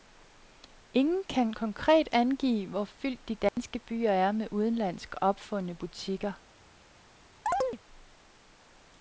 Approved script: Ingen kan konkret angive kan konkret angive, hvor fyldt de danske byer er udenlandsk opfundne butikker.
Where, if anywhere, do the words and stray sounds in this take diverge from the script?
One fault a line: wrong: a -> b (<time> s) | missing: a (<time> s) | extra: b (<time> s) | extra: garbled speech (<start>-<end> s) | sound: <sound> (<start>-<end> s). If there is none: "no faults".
missing: kan konkret angive (2.7 s)
sound: dropout (3.5-3.6 s)
extra: med (4.3 s)
sound: chirp (7.5-7.8 s)